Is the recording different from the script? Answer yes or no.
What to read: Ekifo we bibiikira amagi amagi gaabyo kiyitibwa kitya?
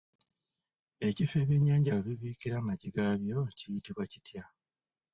yes